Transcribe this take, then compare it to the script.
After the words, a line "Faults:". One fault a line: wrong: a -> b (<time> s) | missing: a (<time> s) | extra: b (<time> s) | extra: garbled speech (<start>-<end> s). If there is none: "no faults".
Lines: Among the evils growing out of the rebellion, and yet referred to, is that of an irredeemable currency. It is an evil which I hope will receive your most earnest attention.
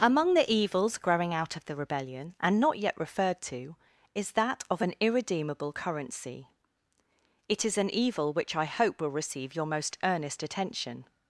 Among the evils growing out of the rebellion, and not yet referred to, is that of an irredeemable currency. It is an evil which I hope will receive your most earnest attention.
Faults:
extra: not (2.6 s)